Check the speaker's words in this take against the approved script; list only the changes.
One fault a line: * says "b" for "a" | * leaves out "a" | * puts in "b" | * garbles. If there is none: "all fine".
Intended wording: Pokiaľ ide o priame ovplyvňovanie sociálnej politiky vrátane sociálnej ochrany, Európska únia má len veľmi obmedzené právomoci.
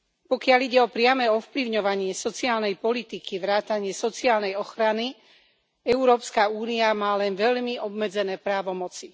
all fine